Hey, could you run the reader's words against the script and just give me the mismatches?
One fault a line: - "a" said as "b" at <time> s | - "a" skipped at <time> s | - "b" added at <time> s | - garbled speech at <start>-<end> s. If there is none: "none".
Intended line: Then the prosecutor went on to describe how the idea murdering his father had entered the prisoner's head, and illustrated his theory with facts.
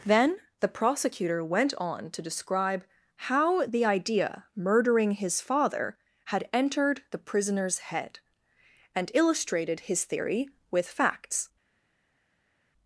none